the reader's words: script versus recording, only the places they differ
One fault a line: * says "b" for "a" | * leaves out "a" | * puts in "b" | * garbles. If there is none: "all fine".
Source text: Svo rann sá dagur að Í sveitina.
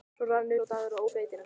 all fine